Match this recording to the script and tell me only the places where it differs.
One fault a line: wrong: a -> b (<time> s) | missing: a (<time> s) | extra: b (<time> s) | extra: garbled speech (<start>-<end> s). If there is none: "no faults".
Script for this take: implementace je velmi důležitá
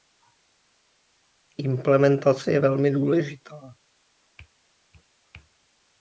no faults